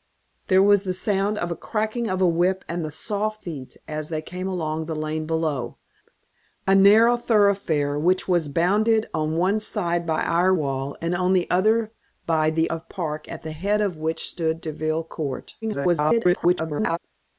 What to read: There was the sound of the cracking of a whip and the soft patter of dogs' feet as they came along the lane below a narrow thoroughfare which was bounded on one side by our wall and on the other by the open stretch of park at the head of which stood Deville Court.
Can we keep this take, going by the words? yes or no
no